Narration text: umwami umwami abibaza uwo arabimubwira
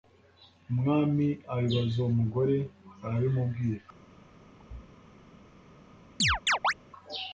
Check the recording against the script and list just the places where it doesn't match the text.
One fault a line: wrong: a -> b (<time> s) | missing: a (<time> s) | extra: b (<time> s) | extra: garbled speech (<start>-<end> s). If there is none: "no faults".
missing: umwami (1.3 s)
extra: mugore (2.2 s)